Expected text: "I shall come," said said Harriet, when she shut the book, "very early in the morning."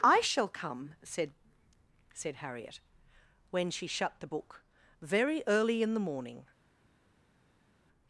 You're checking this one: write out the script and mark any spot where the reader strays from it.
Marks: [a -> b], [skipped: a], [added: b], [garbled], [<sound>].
"I shall come," said said Harriet, when she shut the book, "very early in the morning."